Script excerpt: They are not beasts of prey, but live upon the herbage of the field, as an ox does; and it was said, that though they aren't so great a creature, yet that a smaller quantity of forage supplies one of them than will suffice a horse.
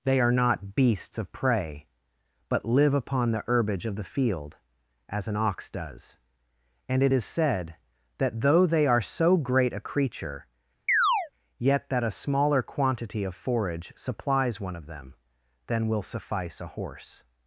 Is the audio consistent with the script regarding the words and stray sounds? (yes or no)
no